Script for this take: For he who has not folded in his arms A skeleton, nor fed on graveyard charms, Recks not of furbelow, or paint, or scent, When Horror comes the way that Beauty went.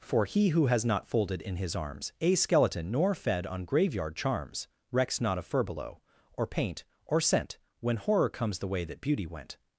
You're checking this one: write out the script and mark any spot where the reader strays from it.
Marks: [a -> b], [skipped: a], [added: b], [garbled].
For he who has not folded in his arms A skeleton, nor fed on graveyard charms, Recks not of furbelow, or paint, or scent, When Horror comes the way that Beauty went.